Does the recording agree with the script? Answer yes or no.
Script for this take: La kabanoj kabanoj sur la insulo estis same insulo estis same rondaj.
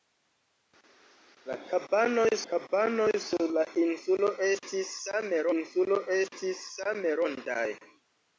yes